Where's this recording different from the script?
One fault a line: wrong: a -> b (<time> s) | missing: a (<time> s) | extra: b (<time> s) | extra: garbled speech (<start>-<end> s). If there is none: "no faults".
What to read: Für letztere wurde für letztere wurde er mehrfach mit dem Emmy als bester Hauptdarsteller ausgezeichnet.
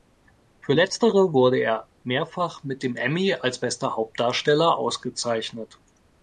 missing: für letztere wurde (1.6 s)